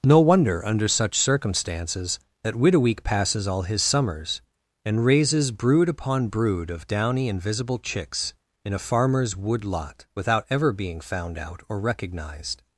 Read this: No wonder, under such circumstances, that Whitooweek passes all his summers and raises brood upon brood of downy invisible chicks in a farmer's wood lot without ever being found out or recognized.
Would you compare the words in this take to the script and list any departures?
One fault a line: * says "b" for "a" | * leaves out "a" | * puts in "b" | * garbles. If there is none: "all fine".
all fine